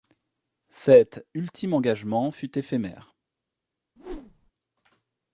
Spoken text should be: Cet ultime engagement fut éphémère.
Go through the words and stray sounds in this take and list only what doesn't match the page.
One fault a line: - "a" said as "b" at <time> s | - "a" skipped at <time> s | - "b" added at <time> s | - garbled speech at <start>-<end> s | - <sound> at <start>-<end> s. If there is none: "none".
- whoosh at 4.0-4.5 s